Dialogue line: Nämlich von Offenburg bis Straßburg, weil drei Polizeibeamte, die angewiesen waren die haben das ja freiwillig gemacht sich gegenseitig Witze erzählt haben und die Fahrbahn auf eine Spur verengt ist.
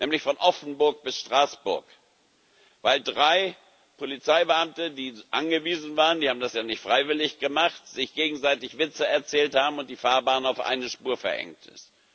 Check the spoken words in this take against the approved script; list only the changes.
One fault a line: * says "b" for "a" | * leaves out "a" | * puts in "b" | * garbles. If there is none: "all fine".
* puts in "nicht"